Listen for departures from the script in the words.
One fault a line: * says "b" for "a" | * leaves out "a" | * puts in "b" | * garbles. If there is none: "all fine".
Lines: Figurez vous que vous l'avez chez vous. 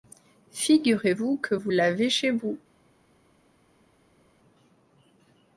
all fine